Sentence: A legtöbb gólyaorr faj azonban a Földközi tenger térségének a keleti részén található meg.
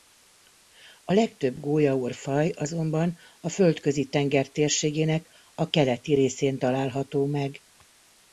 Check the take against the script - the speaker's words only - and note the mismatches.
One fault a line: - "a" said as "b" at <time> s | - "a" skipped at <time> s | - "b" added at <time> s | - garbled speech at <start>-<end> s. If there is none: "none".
none